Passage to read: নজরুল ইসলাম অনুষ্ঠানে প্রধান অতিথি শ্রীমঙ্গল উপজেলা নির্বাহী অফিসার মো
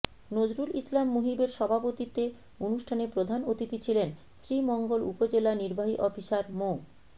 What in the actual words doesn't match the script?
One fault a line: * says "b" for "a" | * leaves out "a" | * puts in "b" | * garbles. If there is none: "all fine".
* puts in "মুহিবের সভাপতিত্বে"
* puts in "ছিলেন"